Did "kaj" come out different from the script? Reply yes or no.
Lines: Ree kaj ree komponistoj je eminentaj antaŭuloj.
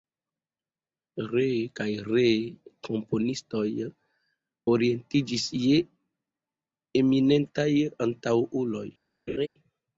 no